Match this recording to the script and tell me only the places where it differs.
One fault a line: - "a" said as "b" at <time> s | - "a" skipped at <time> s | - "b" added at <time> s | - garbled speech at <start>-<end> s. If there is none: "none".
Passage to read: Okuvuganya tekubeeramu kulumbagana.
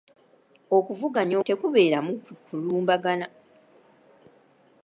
none